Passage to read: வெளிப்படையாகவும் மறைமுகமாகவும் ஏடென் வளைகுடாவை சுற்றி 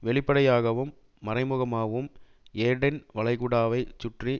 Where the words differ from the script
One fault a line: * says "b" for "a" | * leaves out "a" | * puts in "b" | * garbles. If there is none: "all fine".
all fine